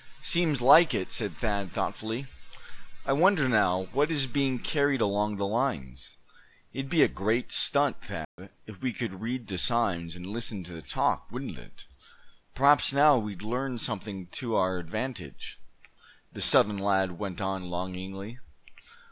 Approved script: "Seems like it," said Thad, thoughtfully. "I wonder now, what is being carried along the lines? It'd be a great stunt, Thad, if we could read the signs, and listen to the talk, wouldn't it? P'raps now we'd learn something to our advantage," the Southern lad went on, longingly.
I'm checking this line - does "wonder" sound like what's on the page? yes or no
yes